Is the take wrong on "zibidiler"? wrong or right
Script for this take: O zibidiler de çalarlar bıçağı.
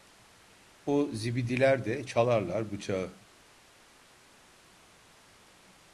right